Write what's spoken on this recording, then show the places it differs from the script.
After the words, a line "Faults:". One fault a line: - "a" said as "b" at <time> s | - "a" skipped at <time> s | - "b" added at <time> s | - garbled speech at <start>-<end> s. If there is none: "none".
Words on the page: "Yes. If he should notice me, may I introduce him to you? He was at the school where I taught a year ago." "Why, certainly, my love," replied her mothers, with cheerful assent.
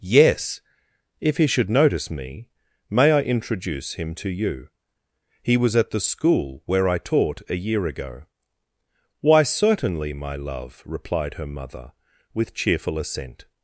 "Yes. If he should notice me, may I introduce him to you? He was at the school where I taught a year ago." "Why, certainly, my love," replied her mother, with cheerful assent.
Faults:
- "mothers" said as "mother" at 11.5 s